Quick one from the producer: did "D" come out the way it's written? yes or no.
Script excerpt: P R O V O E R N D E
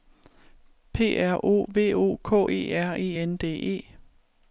yes